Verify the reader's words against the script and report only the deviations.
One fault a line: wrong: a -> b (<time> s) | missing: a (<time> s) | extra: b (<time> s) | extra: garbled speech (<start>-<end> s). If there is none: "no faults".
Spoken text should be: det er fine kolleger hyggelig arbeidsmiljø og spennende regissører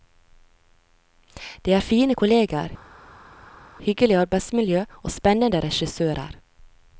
no faults